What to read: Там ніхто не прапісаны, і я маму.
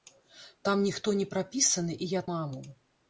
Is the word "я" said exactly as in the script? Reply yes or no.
yes